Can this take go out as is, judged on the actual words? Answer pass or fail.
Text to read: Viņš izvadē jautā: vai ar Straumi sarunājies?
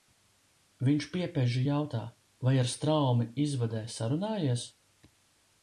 fail